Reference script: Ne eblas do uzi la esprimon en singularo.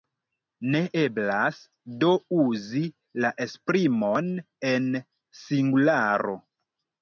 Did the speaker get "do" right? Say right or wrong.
right